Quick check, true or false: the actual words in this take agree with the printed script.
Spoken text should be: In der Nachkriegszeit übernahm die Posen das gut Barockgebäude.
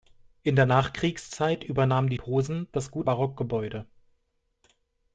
true